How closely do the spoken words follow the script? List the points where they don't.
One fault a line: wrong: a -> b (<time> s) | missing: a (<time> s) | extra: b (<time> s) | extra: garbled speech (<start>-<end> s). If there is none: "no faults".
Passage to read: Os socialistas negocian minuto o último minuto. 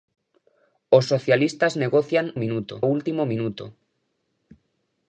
no faults